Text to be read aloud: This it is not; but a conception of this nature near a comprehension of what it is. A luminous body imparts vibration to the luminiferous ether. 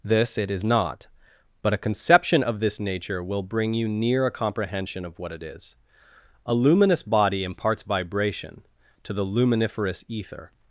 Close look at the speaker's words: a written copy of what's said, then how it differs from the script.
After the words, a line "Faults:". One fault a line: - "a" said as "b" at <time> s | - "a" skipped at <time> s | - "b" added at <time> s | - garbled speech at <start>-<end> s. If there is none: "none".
This it is not; but a conception of this nature will bring you near a comprehension of what it is. A luminous body imparts vibration to the luminiferous ether.
Faults:
- "will bring you" added at 3.2 s